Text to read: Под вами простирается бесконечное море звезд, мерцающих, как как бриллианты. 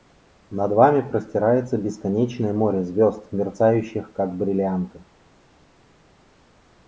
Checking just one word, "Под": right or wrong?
wrong